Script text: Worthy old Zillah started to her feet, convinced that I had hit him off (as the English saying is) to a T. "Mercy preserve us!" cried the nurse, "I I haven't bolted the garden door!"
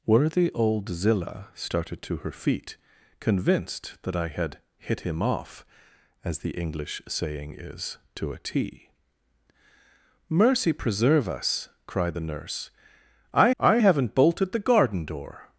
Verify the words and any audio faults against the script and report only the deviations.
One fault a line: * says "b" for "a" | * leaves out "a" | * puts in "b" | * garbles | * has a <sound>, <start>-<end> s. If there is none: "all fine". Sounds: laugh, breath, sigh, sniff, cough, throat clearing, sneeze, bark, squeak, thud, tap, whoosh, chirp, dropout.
all fine